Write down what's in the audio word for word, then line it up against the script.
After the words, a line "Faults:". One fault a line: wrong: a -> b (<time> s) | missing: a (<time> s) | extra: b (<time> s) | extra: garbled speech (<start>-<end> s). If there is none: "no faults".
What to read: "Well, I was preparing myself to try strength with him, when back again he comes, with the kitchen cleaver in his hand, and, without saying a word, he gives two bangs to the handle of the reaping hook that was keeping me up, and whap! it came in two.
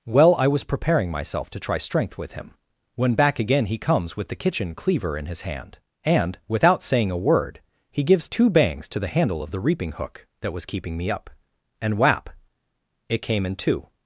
"Well, I was preparing myself to try strength with him, when back again he comes, with the kitchen cleaver in his hand, and, without saying a word, he gives two bangs to the handle of the reaping hook that was keeping me up, and whap! it came in two.
Faults:
no faults